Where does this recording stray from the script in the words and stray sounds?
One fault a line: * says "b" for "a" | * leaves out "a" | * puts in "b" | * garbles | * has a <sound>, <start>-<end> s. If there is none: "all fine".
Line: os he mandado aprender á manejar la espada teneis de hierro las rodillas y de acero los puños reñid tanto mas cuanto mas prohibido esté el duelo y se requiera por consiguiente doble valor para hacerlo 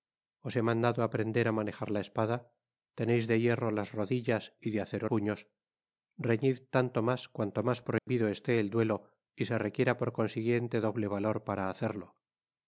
* leaves out "los"
* has a dropout, 8.0-8.1 s